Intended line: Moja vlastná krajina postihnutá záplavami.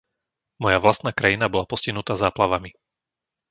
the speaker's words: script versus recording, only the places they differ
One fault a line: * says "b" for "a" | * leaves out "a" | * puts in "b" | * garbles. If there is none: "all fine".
* puts in "bola"